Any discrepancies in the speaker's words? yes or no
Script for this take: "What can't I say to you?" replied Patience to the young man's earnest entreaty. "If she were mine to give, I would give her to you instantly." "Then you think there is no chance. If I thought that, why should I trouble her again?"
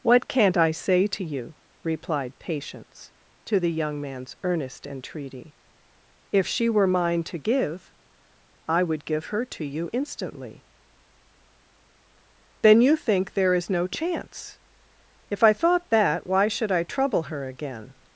no